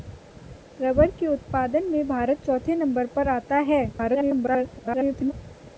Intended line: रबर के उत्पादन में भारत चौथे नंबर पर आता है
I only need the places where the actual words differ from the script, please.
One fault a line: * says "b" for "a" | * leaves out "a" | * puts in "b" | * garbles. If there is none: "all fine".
* garbles